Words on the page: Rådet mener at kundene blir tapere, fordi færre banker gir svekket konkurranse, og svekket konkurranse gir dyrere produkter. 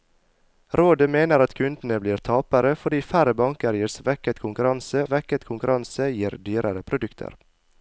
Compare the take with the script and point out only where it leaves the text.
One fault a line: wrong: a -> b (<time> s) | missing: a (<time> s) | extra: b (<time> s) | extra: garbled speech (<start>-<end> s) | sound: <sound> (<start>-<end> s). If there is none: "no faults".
missing: og (5.0 s)